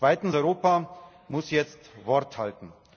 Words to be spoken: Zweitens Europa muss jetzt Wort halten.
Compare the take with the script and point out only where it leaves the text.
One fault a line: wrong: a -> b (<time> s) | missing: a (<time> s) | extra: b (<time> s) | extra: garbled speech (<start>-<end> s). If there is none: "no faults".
no faults